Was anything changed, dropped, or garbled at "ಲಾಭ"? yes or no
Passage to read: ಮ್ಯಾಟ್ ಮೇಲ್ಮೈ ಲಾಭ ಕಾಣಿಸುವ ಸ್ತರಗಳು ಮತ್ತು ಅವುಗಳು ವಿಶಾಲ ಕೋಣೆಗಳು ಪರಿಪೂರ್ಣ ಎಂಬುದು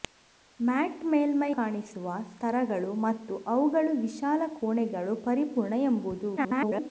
yes